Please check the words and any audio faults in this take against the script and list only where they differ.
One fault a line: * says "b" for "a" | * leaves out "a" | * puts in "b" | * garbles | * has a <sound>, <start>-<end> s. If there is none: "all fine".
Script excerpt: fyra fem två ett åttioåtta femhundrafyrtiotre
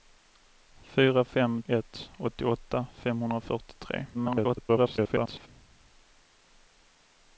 * leaves out "två"
* garbles